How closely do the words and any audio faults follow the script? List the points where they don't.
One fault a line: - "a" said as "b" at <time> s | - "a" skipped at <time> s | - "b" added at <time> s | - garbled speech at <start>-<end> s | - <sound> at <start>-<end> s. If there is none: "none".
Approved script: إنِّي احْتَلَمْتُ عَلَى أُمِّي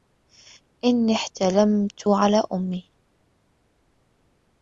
none